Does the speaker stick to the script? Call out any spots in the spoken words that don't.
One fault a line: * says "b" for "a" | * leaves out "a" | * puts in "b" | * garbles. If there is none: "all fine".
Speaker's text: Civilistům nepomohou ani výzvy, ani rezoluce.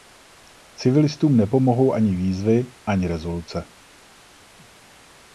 all fine